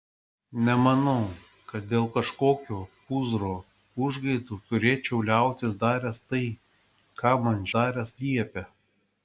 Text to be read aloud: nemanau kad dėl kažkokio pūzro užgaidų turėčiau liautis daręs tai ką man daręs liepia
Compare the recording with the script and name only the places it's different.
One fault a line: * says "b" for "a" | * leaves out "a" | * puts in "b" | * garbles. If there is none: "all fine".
all fine